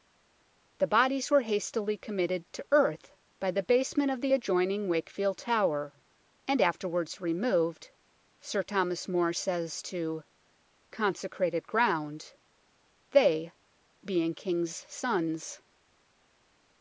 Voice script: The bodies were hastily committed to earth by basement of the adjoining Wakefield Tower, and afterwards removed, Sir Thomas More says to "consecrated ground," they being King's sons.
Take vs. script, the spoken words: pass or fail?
fail